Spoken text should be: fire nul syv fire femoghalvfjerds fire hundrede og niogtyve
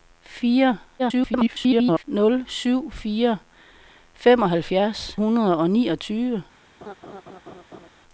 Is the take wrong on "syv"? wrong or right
right